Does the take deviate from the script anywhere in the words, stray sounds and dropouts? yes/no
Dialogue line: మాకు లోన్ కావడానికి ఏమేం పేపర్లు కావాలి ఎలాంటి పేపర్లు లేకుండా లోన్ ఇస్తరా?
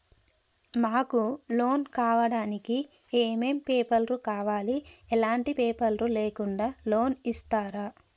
no